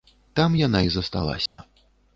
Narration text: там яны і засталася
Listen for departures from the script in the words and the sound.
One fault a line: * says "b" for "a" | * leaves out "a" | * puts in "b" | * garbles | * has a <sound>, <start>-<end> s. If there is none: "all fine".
* says "яна" for "яны"
* has a dropout, 1.5-1.6 s